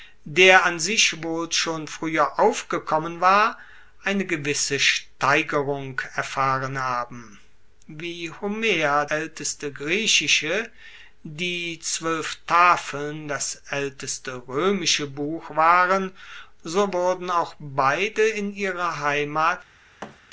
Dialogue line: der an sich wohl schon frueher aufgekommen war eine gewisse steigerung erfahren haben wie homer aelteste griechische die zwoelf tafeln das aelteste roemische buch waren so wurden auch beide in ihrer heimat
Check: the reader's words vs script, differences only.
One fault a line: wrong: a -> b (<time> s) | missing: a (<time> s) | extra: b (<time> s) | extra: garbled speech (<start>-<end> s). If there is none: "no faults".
no faults